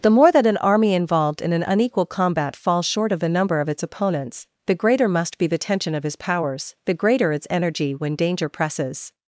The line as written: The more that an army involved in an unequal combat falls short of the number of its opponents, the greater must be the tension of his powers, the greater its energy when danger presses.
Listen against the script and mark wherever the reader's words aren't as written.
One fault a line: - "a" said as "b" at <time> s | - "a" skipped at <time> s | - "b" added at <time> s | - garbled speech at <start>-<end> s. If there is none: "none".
none